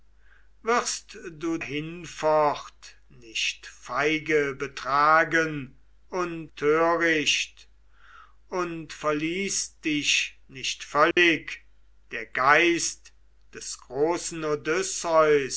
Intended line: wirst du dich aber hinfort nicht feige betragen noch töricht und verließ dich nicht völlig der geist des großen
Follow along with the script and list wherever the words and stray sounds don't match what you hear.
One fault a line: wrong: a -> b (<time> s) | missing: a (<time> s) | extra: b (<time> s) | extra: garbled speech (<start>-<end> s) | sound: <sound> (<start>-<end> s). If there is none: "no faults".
missing: dich aber (1.6 s)
wrong: noch -> und (6.1 s)
sound: dropout (11.1-11.2 s)